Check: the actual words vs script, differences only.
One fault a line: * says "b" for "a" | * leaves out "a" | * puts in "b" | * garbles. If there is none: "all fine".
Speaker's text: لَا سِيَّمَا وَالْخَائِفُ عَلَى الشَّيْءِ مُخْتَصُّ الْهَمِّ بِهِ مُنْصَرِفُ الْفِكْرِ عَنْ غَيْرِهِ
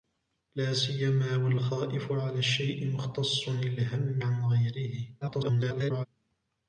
* leaves out "بِهِ مُنْصَرِفُ الْفِكْرِ"
* garbles